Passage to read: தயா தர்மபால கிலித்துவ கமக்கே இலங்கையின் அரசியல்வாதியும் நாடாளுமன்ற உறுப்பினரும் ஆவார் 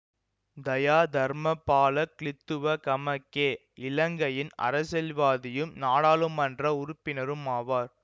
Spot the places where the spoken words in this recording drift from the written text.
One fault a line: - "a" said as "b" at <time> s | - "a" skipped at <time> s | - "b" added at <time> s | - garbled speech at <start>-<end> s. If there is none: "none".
none